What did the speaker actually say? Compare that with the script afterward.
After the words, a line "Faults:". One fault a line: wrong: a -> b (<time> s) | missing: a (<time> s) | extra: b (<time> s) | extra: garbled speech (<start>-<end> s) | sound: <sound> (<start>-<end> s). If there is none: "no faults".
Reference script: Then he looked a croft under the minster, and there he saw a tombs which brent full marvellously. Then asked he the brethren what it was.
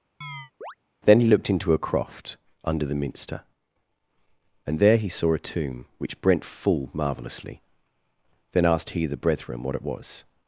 Then he looked into a croft under the minster, and there he saw a tomb which brent full marvellously. Then asked he the brethren what it was.
Faults:
sound: chirp (0.2-0.7 s)
extra: into (1.5 s)
wrong: tombs -> tomb (5.4 s)